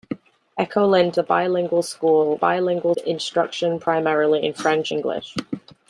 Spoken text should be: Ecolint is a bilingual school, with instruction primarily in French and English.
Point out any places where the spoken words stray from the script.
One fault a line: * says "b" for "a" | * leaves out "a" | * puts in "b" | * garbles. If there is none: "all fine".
* leaves out "is"
* says "bilingual" for "with"
* leaves out "and"